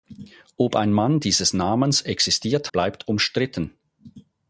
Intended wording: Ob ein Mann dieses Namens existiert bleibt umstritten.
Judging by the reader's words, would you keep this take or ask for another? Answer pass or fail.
pass